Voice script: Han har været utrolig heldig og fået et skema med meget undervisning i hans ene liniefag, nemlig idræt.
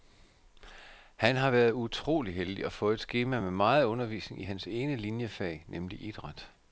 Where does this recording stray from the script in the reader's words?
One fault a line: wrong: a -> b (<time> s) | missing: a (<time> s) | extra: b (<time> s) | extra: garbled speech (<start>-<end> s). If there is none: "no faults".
no faults